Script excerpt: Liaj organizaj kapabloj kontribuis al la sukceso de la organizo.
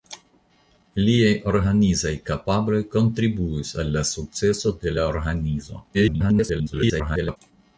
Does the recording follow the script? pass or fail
fail